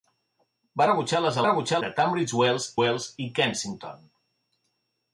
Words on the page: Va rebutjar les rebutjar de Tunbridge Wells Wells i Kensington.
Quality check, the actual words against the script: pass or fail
pass